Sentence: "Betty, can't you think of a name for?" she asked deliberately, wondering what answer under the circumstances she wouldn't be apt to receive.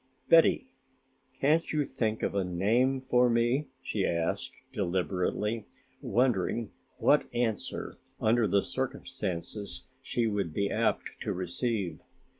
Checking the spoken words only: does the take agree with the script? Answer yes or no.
no